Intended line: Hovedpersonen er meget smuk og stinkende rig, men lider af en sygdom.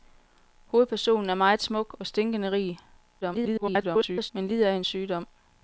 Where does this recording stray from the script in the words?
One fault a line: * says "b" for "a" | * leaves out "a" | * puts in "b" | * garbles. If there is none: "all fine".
* garbles